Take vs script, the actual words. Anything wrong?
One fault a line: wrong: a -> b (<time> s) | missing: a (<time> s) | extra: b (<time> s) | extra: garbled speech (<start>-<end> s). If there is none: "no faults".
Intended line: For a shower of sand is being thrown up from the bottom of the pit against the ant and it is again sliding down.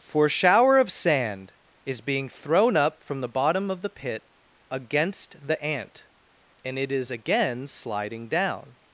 missing: a (0.3 s)